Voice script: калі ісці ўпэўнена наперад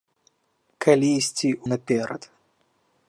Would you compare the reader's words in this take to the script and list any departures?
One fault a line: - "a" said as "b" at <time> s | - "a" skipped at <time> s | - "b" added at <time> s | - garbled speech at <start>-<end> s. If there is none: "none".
- "ўпэўнена" skipped at 1.5 s